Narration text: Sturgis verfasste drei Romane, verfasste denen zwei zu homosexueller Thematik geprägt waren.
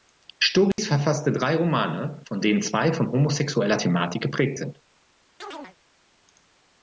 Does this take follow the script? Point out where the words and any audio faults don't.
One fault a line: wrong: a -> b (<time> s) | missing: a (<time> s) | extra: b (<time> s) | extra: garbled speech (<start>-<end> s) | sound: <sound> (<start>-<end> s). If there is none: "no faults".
sound: dropout (0.7-0.8 s)
wrong: verfasste -> von (2.2 s)
wrong: zu -> von (2.9 s)
wrong: waren -> sind (4.6 s)
sound: chirp (5.4-5.8 s)